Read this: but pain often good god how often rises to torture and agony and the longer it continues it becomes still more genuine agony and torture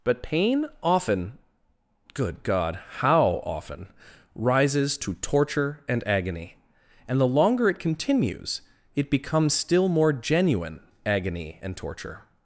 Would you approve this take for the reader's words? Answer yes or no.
yes